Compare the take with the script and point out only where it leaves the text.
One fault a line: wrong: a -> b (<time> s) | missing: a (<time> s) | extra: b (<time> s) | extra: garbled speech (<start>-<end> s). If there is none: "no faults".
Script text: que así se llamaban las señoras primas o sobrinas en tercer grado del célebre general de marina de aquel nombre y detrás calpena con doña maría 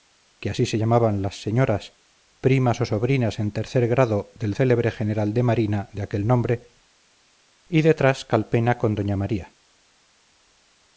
no faults